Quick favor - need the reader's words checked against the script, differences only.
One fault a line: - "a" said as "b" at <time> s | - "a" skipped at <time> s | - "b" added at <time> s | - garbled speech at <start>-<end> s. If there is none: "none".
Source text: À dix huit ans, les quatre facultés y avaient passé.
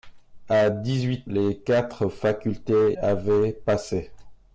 - "ans" skipped at 1.3 s
- "y" skipped at 3.0 s